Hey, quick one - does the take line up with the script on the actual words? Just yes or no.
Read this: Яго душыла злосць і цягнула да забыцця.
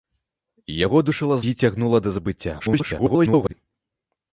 no